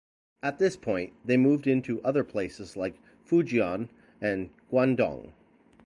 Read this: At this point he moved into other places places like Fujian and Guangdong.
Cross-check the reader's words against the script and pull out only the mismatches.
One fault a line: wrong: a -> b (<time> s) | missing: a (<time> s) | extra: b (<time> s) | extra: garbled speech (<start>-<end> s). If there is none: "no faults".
wrong: he -> they (1.2 s)
missing: places (2.8 s)